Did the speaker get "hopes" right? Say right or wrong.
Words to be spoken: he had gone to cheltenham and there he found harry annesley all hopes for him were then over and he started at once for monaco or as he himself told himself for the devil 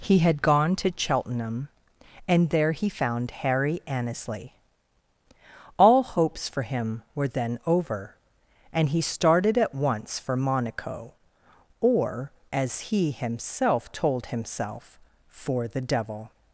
right